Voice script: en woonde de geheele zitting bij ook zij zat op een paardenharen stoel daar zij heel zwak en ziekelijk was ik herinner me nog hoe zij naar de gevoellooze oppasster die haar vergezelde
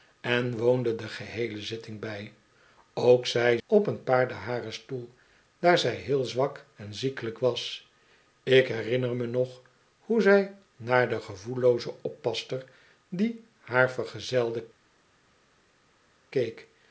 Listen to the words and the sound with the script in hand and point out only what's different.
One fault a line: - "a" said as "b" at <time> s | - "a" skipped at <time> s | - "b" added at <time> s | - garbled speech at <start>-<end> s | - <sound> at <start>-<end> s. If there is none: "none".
- "zat" skipped at 3.6 s